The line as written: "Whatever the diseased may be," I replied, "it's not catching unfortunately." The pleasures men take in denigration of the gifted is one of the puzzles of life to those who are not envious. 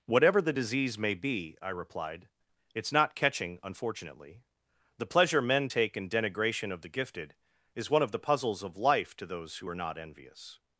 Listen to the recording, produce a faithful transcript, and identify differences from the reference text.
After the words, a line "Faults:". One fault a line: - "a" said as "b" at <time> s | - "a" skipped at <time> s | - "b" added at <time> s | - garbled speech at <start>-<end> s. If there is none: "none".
"Whatever the disease may be," I replied, "it's not catching unfortunately." The pleasure men take in denigration of the gifted is one of the puzzles of life to those who are not envious.
Faults:
- "diseased" said as "disease" at 0.5 s
- "pleasures" said as "pleasure" at 5.1 s